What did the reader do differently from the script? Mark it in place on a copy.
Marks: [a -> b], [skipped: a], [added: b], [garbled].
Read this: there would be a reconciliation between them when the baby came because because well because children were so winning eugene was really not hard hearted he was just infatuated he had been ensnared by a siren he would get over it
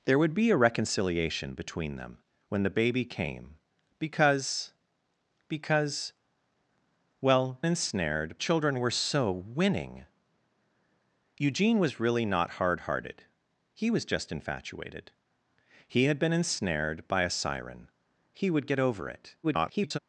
there would be a reconciliation between them when the baby came because because well [because -> ensnared] children were so winning eugene was really not hard hearted he was just infatuated he had been ensnared by a siren he would get over it [garbled]